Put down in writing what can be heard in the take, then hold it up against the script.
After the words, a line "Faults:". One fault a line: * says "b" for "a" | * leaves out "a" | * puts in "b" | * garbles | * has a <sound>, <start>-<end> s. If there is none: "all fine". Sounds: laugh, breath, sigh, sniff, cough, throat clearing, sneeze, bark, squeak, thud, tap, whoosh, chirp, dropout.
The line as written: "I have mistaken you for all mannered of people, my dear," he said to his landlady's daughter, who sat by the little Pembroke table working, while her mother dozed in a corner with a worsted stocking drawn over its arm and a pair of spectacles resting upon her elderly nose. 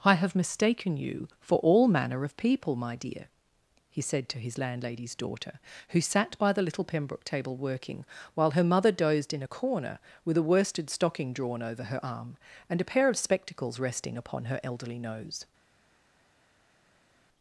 "I have mistaken you for all manner of people, my dear," he said to his landlady's daughter, who sat by the little Pembroke table working, while her mother dozed in a corner with a worsted stocking drawn over her arm and a pair of spectacles resting upon her elderly nose.
Faults:
* says "manner" for "mannered"
* says "her" for "its"